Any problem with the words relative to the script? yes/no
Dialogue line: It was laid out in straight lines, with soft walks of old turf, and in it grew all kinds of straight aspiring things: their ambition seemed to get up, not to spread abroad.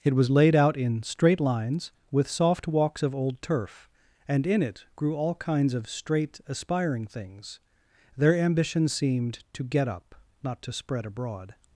no